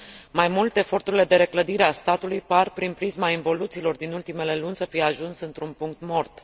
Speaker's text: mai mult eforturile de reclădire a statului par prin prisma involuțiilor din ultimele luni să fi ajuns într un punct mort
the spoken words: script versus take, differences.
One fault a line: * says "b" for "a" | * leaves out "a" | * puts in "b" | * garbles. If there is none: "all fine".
all fine